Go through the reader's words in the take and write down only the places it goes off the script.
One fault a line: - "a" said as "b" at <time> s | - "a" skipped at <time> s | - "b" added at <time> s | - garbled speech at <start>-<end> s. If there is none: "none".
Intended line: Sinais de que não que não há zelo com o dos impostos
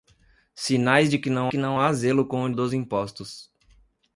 none